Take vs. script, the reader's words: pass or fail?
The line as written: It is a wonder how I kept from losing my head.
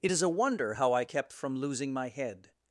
pass